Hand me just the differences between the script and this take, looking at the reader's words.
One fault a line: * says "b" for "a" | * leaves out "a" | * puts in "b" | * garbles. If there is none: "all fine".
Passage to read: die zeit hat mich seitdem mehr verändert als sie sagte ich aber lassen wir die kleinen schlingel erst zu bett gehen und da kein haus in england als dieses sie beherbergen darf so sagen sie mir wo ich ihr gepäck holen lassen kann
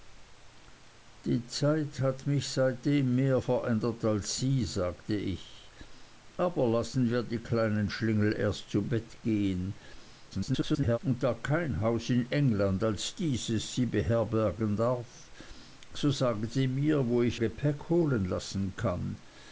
* garbles
* leaves out "ihr"